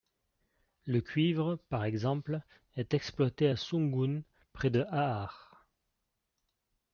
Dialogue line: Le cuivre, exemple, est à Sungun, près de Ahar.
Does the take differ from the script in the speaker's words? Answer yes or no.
yes